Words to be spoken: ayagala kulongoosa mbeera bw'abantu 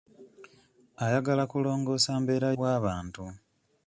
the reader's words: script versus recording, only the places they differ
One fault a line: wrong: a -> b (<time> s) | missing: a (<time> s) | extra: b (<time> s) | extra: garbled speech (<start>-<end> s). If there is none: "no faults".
no faults